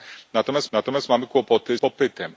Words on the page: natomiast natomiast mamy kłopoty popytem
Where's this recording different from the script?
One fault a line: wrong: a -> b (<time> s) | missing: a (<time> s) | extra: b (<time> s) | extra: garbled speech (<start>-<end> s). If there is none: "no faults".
no faults